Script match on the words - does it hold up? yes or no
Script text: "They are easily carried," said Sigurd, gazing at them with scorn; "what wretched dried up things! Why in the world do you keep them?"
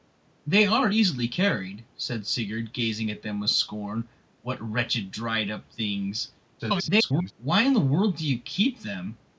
no